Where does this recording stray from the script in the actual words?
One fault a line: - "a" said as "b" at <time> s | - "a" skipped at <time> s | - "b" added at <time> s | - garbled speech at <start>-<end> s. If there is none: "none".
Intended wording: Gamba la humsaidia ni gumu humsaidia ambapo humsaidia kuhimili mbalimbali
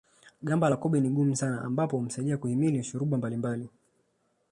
- "humsaidia" said as "kobe" at 0.8 s
- "humsaidia" said as "sana" at 1.3 s
- "shuruba" added at 2.8 s